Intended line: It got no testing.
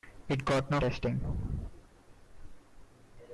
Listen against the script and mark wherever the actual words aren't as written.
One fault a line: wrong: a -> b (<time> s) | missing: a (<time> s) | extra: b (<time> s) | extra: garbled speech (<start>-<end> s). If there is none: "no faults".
no faults